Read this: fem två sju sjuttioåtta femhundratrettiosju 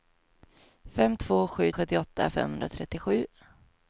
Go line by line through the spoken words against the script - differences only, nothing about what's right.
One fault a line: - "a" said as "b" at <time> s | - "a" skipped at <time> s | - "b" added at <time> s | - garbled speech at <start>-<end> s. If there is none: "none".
none